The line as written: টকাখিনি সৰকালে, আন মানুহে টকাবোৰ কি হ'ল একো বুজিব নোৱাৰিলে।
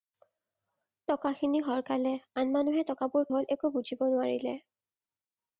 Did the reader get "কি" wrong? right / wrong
wrong